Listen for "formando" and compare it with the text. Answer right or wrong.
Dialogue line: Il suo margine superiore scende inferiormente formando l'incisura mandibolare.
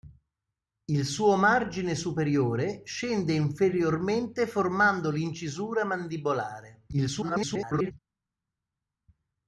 right